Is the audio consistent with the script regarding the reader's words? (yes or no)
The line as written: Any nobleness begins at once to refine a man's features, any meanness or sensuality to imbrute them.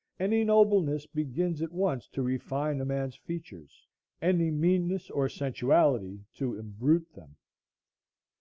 yes